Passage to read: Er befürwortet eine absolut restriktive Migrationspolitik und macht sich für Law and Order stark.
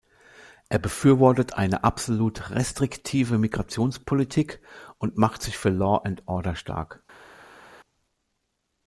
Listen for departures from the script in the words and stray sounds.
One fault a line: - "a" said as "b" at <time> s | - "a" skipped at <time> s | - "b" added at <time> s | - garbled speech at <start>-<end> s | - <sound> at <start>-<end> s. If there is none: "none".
none